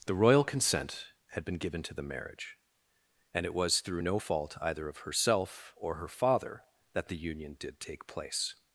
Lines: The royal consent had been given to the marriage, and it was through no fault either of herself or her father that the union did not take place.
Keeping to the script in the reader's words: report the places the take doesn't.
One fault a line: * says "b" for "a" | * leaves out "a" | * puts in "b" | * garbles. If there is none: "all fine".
* leaves out "not"